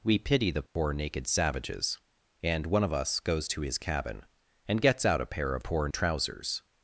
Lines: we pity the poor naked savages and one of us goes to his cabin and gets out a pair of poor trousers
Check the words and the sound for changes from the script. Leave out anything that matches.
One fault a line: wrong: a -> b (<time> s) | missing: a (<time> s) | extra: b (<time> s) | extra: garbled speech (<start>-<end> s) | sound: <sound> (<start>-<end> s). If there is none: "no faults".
sound: dropout (0.7-0.8 s)